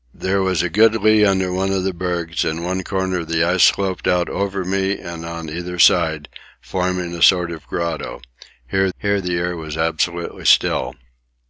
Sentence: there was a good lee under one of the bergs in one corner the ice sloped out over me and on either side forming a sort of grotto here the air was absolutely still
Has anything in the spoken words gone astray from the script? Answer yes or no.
yes